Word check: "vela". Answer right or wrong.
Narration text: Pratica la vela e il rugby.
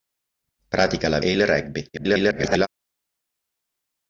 wrong